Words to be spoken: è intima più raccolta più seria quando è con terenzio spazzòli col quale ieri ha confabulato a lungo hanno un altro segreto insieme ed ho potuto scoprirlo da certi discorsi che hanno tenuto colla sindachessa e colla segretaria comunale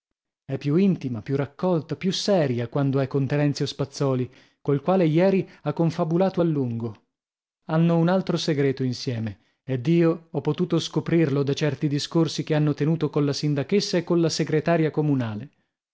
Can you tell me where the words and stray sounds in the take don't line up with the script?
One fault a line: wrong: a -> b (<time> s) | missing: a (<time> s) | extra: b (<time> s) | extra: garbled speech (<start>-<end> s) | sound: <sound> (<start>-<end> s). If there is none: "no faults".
extra: più (0.6 s)
extra: io (9.9 s)